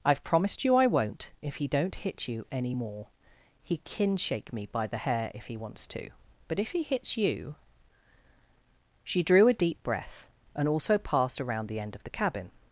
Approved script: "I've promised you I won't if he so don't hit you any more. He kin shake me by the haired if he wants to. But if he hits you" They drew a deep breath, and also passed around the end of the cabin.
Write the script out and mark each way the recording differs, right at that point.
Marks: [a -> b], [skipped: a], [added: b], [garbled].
"I've promised you I won't if he [skipped: so] don't hit you any more. He kin shake me by the [haired -> hair] if he wants to. But if he hits you" [They -> She] drew a deep breath, and also passed around the end of the cabin.